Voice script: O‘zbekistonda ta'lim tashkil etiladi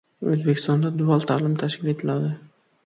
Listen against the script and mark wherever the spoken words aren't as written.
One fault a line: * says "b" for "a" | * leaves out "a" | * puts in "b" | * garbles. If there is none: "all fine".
* puts in "dual"